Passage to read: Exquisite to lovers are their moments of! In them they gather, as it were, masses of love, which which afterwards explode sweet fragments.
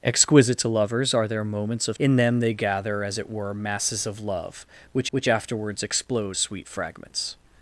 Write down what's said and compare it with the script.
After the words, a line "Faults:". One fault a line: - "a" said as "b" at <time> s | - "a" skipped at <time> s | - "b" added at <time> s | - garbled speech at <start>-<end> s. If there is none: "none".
Exquisite to lovers are their moments of! In them they gather, as it were, masses of love, which which afterwards explode sweet fragments.
Faults:
none